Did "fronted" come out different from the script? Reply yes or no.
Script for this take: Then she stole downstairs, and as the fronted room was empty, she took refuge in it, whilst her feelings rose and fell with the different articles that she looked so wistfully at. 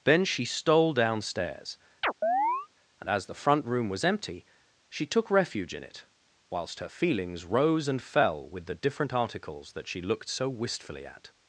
yes